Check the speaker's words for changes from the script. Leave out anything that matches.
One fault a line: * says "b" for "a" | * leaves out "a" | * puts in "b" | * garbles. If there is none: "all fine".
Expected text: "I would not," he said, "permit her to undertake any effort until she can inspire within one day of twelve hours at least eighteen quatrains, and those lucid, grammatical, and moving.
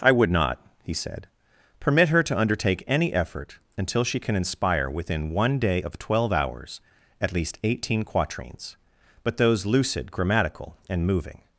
* says "but" for "and"